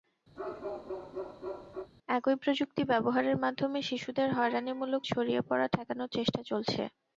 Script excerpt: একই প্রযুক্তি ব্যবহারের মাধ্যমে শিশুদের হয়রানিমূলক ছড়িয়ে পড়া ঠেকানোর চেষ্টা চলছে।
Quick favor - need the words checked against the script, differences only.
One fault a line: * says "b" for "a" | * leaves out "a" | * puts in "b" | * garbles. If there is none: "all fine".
all fine